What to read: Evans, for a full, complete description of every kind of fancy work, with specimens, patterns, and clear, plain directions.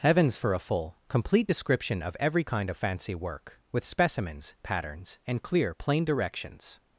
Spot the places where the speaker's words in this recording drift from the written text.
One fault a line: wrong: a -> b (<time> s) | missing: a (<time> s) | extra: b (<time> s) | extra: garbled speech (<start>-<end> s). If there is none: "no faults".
wrong: Evans -> Heavens (0.0 s)